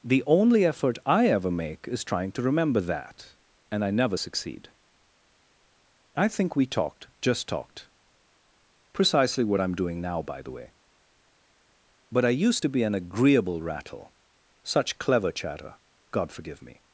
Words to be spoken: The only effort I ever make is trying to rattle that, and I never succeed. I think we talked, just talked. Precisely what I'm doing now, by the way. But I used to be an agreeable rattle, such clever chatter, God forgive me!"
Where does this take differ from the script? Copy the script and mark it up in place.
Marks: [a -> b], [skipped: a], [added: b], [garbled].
The only effort I ever make is trying to [rattle -> remember] that, and I never succeed. I think we talked, just talked. Precisely what I'm doing now, by the way. But I used to be an agreeable rattle, such clever chatter, God forgive me!"